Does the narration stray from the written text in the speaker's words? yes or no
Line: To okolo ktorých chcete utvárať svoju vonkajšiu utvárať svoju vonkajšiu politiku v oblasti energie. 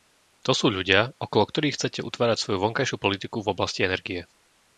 yes